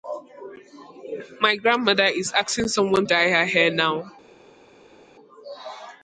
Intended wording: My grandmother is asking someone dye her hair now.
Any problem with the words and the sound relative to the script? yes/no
no